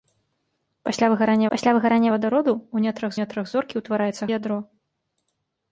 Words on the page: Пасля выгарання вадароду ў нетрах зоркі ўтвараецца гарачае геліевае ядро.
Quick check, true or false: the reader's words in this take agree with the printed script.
false